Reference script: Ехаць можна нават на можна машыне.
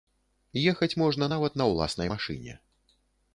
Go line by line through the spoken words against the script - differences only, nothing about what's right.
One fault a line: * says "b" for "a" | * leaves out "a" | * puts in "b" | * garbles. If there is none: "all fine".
* says "ўласнай" for "можна"